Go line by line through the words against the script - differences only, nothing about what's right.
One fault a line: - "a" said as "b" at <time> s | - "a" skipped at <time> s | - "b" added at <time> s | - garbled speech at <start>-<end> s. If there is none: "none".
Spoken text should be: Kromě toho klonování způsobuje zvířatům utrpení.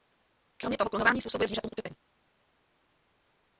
none